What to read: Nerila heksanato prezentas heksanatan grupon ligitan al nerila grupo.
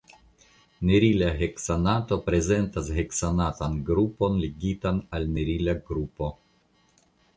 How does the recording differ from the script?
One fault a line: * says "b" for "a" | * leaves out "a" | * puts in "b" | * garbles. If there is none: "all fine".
all fine